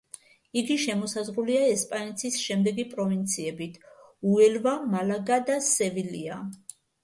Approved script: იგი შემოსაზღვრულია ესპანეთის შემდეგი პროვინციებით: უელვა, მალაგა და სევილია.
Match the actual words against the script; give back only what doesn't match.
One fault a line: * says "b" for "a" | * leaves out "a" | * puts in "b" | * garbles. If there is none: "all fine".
all fine